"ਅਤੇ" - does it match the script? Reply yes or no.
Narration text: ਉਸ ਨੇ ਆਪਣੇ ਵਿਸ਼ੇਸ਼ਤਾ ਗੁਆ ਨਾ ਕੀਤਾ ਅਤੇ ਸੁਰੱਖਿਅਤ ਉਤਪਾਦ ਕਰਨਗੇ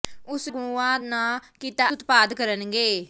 no